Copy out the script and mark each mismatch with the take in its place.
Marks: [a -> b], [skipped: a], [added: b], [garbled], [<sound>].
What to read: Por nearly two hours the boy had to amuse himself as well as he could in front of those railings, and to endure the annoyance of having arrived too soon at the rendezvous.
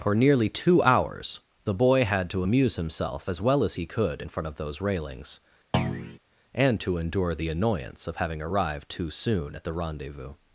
[Por -> For] nearly two hours the boy had to amuse himself as well as he could in front of those railings, [thud] and to endure the annoyance of having arrived too soon at the rendezvous.